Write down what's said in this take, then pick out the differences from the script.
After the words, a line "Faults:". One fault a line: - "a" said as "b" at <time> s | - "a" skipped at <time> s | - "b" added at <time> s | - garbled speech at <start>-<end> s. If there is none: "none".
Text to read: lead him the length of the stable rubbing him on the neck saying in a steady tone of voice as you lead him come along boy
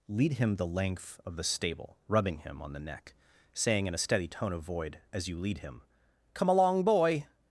lead him the length of the stable rubbing him on the neck saying in a steady tone of void as you lead him come along boy
Faults:
- "voice" said as "void" at 4.6 s